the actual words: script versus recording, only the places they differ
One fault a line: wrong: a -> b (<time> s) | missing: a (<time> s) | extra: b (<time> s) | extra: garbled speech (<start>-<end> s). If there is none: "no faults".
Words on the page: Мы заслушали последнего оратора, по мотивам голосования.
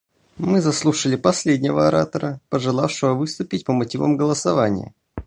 extra: пожелавшего выступить (2.5 s)